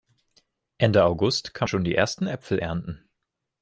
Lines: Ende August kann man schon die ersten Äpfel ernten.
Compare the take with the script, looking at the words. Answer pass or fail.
fail